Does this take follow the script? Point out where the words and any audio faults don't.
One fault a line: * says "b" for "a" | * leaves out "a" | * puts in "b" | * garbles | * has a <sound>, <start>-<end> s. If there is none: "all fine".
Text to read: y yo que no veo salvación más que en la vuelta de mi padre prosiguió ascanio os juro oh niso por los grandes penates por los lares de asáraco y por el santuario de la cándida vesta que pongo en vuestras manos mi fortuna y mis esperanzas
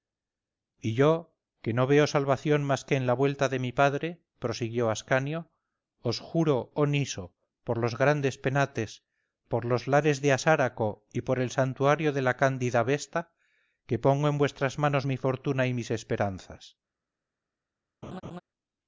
* has a laugh, 18.0-18.4 s